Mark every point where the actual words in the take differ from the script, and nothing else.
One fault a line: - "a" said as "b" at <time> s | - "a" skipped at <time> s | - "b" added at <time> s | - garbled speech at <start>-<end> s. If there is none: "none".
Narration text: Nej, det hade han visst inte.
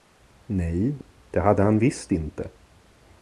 none